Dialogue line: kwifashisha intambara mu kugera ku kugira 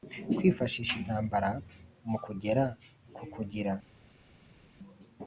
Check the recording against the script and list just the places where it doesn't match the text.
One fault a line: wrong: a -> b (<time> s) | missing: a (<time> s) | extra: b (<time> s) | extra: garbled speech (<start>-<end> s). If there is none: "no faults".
no faults